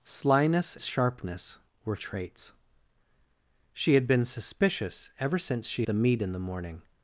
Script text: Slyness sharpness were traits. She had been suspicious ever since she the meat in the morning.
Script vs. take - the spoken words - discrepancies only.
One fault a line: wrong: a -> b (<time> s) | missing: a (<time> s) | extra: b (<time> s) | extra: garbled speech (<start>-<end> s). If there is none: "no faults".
no faults